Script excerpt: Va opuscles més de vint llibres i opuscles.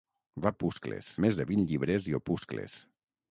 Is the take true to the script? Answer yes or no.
yes